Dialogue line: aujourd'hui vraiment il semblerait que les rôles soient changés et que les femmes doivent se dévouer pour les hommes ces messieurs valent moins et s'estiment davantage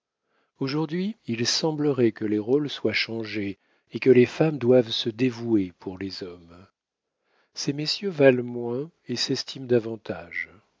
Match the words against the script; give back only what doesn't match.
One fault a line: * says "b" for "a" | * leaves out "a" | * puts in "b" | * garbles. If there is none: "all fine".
* leaves out "vraiment"